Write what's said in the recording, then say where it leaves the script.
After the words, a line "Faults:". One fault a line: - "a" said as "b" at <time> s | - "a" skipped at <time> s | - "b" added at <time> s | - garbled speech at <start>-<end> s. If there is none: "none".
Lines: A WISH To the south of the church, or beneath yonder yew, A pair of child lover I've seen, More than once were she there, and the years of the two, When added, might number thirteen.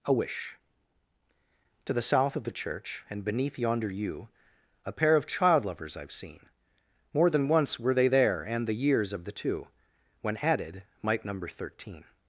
A WISH To the south of the church, and beneath yonder yew, A pair of child lovers I've seen, More than once were they there, and the years of the two, When added, might number thirteen.
Faults:
- "or" said as "and" at 3.1 s
- "lover" said as "lovers" at 5.7 s
- "she" said as "they" at 7.9 s